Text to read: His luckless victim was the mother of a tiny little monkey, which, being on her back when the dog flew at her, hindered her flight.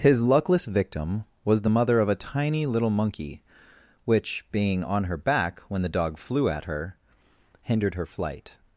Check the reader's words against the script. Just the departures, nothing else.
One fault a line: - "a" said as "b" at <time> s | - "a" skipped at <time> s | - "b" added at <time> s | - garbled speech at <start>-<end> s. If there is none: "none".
none